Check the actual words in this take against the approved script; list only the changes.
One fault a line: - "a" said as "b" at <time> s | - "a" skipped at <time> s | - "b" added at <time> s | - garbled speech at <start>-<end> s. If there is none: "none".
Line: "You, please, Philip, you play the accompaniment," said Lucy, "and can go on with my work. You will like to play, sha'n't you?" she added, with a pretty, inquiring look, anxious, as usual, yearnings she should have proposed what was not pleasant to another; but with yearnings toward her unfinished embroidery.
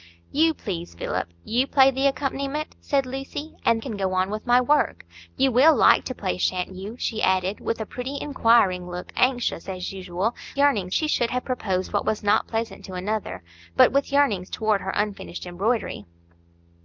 none